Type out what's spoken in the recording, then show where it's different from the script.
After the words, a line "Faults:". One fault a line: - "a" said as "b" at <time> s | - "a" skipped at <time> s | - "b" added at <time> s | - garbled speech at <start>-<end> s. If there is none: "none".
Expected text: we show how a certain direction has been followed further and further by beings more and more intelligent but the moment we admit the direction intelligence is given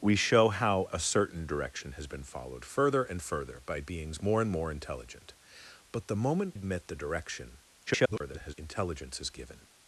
we show how a certain direction has been followed further and further by beings more and more intelligent but the moment admit the direction [garbled] intelligence is given
Faults:
- "we" skipped at 6.5 s
- garbled speech at 7.9-8.5 s